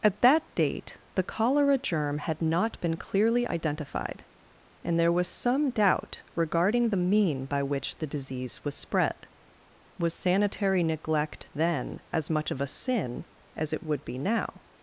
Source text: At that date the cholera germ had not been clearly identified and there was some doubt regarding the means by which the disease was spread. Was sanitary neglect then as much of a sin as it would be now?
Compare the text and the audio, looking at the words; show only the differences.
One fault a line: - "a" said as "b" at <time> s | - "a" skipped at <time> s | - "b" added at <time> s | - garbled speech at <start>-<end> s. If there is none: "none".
- "means" said as "mean" at 7.0 s